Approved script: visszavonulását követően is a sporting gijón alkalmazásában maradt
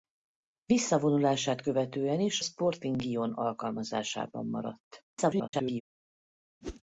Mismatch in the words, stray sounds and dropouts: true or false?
true